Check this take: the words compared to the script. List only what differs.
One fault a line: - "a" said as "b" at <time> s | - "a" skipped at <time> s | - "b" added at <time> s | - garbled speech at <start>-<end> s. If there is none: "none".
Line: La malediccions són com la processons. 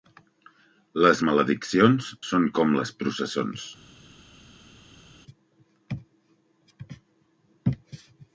- "La" said as "Les" at 1.1 s
- "la" said as "les" at 2.8 s